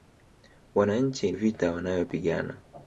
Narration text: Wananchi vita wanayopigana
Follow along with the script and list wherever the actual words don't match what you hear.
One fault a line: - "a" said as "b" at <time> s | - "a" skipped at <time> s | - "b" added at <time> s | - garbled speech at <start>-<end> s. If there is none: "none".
none